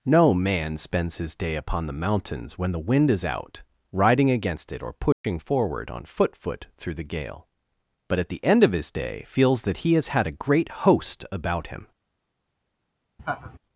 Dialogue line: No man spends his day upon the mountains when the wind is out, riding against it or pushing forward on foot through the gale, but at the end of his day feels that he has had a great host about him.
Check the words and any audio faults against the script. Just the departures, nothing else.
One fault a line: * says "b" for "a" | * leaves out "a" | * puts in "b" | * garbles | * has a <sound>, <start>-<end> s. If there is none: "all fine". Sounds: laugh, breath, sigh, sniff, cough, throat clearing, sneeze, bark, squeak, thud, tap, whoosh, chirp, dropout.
* has a dropout, 5.1-5.2 s
* puts in "foot"
* has a laugh, 13.2-13.6 s